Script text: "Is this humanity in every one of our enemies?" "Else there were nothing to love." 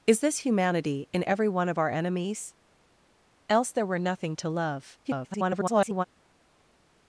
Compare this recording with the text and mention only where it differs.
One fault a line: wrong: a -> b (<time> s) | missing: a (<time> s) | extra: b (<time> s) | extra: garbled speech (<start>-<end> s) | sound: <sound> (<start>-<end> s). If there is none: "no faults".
extra: garbled speech (5.0-6.0 s)